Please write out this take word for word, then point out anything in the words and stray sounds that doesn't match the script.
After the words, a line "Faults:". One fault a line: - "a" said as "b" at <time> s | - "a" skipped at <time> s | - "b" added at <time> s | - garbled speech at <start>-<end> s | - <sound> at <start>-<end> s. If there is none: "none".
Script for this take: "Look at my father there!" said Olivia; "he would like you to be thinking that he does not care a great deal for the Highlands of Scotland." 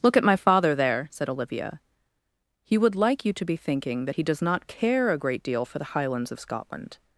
"Look at my father there!" said Olivia; "he would like you to be thinking that he does not care a great deal for the Highlands of Scotland."
Faults:
none